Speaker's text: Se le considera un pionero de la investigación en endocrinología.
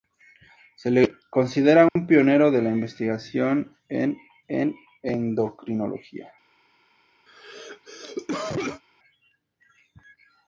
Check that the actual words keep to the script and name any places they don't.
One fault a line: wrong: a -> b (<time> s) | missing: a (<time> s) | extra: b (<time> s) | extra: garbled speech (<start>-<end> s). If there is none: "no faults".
extra: en (4.5 s)